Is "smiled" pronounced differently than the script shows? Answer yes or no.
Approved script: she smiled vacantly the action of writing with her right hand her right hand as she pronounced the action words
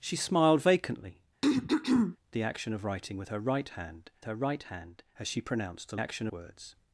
no